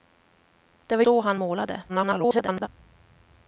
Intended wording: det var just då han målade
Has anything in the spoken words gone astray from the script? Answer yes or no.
yes